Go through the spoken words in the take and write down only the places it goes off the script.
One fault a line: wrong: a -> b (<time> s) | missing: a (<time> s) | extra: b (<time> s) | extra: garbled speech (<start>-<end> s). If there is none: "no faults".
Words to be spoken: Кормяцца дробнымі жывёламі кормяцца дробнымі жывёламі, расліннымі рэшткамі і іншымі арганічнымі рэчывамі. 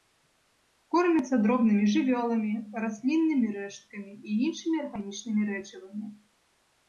missing: кормяцца дробнымі жывёламі (2.5 s)